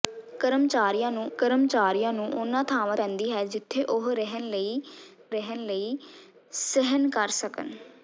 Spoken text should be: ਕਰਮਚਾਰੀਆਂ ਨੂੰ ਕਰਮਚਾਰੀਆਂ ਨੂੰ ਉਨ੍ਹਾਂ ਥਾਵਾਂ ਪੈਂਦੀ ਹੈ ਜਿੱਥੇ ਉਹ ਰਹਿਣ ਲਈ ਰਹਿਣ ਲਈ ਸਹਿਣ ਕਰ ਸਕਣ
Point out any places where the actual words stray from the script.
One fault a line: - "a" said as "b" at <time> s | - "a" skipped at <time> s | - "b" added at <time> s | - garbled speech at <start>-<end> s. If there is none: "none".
none